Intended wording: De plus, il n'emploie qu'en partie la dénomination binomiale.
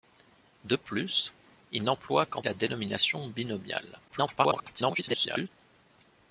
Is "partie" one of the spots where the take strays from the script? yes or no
yes